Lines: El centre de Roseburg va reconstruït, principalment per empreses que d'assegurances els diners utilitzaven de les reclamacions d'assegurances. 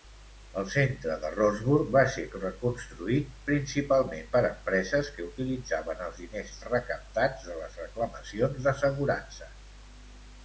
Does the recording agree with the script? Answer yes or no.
no